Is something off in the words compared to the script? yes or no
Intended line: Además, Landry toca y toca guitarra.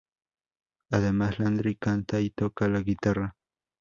yes